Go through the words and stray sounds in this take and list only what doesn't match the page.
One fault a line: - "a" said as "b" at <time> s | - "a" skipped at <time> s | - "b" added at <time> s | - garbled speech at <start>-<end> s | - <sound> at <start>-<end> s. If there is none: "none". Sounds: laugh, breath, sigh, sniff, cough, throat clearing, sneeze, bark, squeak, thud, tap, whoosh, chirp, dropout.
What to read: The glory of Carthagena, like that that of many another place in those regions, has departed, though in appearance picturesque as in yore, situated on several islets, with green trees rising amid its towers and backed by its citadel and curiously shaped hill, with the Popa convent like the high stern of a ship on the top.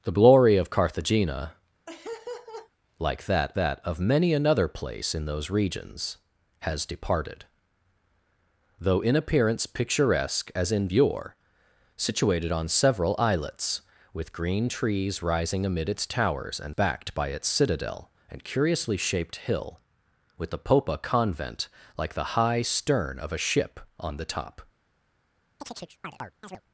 - laugh at 1.9-2.7 s
- chirp at 25.6-26.6 s